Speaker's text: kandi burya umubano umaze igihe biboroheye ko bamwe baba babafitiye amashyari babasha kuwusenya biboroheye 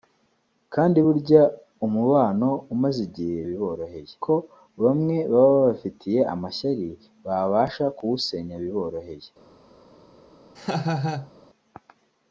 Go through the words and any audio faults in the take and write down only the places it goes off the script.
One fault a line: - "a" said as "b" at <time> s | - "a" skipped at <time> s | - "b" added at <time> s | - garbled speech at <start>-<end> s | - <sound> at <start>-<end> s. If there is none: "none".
- laugh at 10.6-11.3 s